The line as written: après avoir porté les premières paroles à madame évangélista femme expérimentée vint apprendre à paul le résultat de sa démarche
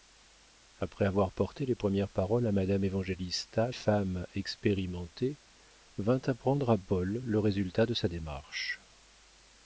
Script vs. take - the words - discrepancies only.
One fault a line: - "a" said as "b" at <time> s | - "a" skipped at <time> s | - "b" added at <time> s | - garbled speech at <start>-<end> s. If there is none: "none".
none